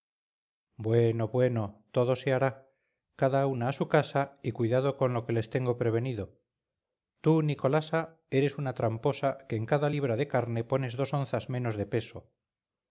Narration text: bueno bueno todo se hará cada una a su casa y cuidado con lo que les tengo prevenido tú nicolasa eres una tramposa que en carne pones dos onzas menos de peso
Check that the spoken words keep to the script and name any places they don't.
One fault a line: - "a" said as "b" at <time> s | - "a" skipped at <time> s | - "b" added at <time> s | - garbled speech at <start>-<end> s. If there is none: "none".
- "cada libra de" added at 9.7 s